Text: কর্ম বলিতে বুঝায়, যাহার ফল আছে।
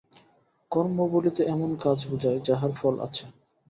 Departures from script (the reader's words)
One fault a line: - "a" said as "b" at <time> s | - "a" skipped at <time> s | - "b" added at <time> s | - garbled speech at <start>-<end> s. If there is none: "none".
- "এমন কাজ" added at 1.5 s